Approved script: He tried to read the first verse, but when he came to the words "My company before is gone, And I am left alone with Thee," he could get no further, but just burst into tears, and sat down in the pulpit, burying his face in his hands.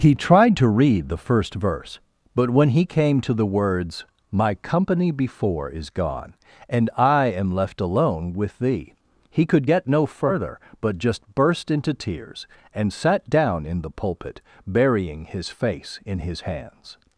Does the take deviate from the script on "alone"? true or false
false